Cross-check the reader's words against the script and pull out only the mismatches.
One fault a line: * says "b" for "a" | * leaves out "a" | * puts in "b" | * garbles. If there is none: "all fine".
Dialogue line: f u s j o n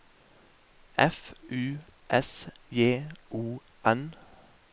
all fine